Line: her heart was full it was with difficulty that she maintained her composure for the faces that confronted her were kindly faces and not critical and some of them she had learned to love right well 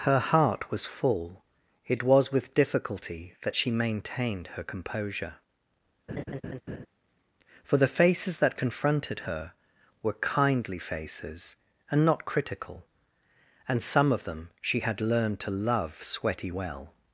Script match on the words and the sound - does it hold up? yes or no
no